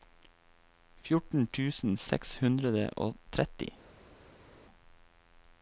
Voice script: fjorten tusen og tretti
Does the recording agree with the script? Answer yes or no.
no